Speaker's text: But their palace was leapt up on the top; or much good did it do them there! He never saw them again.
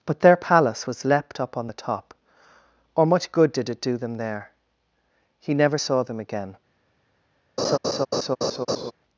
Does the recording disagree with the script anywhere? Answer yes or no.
no